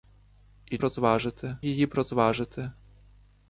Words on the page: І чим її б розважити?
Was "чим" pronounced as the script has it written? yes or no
no